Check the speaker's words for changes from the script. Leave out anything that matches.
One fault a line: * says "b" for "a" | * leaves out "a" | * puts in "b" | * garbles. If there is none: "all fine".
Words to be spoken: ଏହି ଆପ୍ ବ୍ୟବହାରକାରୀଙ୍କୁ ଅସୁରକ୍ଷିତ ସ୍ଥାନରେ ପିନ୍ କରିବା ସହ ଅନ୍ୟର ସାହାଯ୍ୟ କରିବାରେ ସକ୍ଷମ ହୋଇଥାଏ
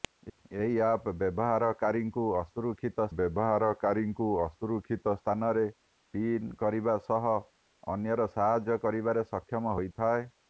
* puts in "ବ୍ୟବହାରକାରୀଙ୍କୁ ଅସୁରକ୍ଷିତ"